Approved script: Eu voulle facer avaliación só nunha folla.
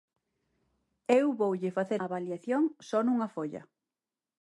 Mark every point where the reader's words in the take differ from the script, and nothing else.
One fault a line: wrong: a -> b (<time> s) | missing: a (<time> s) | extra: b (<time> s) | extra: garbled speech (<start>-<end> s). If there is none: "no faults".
no faults